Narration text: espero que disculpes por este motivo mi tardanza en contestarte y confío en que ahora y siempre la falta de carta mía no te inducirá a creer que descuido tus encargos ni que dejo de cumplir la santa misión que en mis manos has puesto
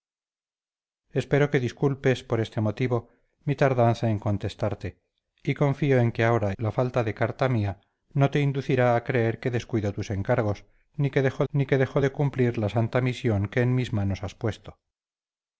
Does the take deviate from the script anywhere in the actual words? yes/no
yes